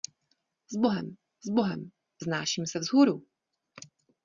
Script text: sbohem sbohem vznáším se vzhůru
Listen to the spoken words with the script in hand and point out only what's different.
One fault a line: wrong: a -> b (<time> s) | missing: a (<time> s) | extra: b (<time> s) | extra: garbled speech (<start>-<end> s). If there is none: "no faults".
no faults